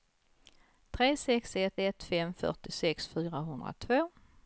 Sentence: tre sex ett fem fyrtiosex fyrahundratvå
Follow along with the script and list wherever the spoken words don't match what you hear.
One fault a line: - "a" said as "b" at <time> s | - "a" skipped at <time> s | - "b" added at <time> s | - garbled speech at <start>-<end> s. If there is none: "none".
- "ett" added at 1.8 s